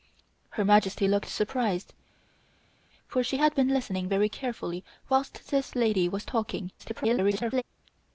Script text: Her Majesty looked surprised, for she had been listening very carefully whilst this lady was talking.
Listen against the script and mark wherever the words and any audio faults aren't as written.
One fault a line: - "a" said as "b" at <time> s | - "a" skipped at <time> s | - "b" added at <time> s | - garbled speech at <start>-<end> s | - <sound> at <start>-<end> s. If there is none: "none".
- garbled speech at 6.8-7.6 s